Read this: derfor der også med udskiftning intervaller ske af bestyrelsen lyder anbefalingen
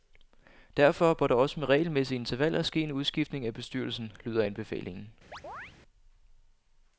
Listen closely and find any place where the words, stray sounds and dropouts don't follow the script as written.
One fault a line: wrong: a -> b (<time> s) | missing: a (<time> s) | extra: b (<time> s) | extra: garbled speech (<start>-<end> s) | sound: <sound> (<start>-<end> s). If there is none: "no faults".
extra: bør (1.1 s)
wrong: udskiftning -> regelmæssige (1.7 s)
extra: en udskiftning (2.8 s)
sound: chirp (5.3-5.7 s)